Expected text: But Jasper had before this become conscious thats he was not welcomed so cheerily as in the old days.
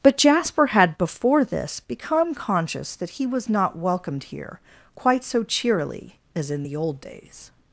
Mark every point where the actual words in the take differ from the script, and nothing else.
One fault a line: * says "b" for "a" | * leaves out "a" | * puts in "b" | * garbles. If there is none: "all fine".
* says "that" for "thats"
* puts in "here quite"